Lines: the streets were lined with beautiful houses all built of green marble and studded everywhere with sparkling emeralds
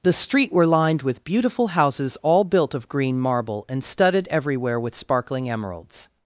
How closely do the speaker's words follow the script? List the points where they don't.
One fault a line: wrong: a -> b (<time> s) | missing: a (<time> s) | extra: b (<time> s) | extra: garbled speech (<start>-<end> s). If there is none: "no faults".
wrong: streets -> street (0.1 s)